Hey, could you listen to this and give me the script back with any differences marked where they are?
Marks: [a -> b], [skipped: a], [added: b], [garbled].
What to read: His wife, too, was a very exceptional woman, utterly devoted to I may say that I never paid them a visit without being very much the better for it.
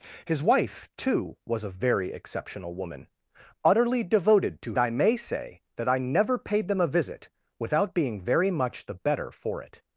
His wife, too, was a very exceptional woman, utterly devoted to I may say that I never paid them a visit without being very much the better for it.